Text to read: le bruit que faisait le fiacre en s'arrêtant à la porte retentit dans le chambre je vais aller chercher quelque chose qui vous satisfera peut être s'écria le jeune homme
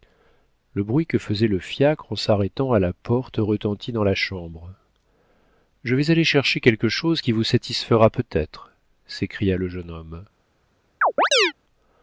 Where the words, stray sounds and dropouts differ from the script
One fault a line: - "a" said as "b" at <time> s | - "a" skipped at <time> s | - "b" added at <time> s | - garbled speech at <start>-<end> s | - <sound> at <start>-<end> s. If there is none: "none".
- "le" said as "la" at 4.0 s
- chirp at 11.0-11.5 s